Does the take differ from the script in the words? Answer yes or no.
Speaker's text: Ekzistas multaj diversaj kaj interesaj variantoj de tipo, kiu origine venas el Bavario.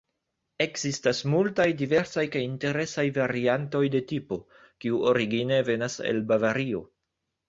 no